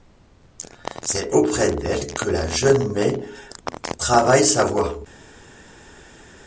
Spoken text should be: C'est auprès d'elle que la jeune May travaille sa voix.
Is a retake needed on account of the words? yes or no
no